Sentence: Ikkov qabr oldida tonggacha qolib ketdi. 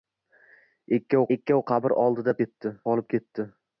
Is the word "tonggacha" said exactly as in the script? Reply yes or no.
no